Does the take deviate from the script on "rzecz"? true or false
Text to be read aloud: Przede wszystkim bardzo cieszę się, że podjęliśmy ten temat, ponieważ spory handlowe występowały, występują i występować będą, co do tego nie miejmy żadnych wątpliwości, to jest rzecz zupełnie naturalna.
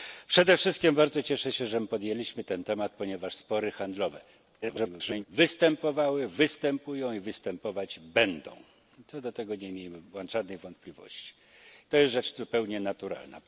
false